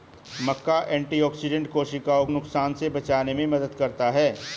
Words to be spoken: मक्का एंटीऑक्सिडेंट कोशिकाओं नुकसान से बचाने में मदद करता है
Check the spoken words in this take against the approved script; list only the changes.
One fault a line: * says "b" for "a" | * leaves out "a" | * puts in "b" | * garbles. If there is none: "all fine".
all fine